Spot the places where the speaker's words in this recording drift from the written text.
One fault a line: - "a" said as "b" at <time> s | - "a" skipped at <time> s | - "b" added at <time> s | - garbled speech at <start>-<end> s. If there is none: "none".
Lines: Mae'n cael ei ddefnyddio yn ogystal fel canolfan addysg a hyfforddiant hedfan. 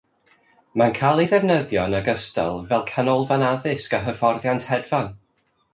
none